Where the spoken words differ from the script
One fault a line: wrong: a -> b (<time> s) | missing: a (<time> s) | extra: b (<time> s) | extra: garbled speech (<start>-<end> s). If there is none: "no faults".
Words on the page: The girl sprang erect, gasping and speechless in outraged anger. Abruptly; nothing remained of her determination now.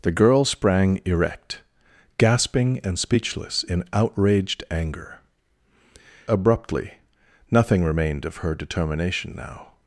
no faults